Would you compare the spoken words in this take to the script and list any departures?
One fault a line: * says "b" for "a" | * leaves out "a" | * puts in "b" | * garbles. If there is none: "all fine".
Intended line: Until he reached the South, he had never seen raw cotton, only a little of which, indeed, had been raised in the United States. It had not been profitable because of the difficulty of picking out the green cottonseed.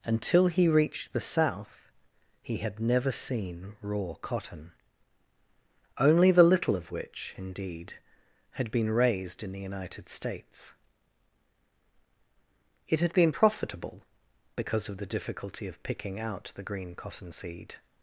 * says "the" for "a"
* leaves out "not"